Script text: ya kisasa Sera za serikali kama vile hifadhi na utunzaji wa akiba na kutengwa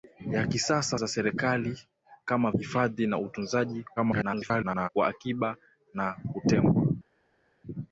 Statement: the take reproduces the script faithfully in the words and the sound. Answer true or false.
false